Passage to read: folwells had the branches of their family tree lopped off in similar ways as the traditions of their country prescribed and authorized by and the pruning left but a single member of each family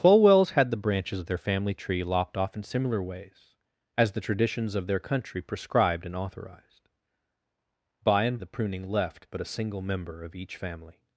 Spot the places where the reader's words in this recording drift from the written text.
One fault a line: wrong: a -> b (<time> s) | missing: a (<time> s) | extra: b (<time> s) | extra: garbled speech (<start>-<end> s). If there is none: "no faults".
no faults